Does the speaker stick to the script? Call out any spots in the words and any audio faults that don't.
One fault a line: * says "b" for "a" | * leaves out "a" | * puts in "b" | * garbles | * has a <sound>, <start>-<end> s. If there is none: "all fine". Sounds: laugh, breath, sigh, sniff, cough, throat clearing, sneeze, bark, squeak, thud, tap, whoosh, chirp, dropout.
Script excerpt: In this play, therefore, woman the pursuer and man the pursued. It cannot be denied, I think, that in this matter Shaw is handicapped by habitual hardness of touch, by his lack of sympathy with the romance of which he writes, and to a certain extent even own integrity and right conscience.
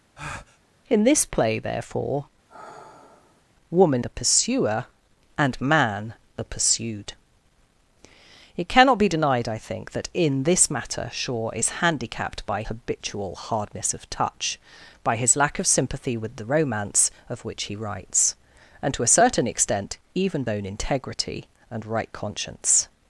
* has a breath, 0.2-0.6 s
* has a sigh, 2.5-3.4 s